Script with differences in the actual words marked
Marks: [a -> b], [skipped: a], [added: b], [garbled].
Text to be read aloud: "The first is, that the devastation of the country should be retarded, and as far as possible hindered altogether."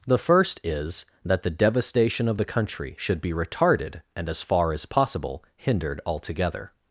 "The first is, that the devastation of the country should be retarded, and as far as possible hindered altogether."